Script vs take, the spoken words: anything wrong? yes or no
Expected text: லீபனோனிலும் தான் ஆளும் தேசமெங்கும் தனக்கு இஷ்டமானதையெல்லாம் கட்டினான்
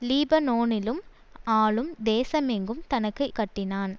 yes